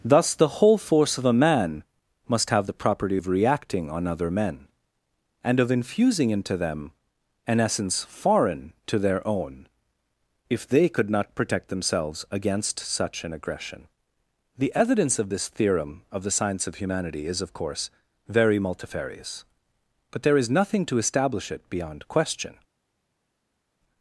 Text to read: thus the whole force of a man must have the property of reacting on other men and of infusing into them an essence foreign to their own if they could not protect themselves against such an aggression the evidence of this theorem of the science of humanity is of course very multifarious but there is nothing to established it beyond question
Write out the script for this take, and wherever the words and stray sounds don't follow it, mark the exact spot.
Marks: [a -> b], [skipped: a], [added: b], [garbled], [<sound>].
thus the whole force of a man must have the property of reacting on other men and of infusing into them an essence foreign to their own if they could not protect themselves against such an aggression the evidence of this theorem of the science of humanity is of course very multifarious but there is nothing to [established -> establish] it beyond question